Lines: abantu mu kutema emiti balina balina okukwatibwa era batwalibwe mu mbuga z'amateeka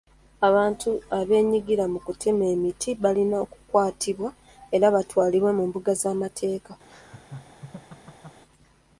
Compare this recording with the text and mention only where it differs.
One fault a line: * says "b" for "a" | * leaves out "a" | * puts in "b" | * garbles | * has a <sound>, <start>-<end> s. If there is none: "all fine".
* puts in "abeenyigira"
* leaves out "balina"
* has a laugh, 6.9-8.4 s